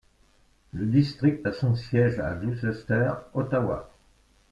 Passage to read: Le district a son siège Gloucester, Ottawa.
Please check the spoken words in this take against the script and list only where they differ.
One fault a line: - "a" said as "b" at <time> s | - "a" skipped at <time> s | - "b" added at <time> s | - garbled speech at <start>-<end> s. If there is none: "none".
- "à" added at 2.2 s